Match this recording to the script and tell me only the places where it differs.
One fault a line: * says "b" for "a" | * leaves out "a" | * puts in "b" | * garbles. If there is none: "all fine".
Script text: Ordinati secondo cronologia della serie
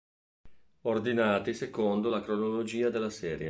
* puts in "la"